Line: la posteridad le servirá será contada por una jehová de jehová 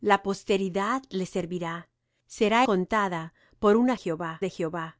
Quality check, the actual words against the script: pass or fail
pass